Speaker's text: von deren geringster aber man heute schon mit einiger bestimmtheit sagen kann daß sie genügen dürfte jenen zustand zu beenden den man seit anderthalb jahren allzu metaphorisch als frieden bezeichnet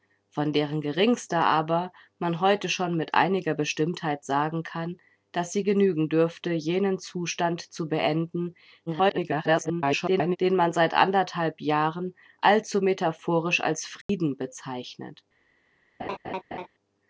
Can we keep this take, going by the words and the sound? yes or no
no